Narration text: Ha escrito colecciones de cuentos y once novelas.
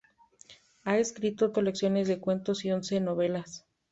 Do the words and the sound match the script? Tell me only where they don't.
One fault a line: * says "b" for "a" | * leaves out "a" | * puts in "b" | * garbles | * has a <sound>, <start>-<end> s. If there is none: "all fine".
all fine